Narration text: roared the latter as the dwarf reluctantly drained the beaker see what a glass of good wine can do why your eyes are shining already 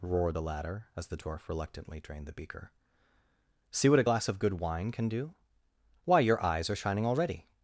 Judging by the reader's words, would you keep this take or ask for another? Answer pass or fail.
pass